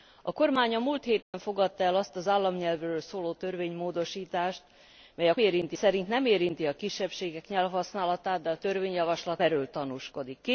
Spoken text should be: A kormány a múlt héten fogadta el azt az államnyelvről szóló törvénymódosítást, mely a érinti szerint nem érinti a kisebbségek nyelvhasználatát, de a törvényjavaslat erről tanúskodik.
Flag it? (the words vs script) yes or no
no